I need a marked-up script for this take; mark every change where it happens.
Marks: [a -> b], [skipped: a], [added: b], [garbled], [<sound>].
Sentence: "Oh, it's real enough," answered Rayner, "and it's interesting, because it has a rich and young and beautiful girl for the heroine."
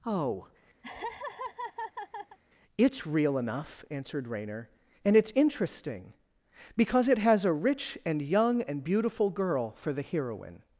"Oh, [laugh] it's real enough," answered Rayner, "and it's interesting, because it has a rich and young and beautiful girl for the heroine."